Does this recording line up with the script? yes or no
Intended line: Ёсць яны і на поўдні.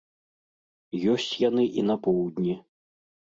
yes